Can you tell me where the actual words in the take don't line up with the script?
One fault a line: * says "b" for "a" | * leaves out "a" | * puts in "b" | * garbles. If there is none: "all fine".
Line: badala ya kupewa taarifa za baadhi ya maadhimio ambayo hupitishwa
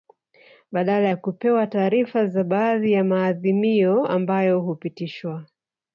all fine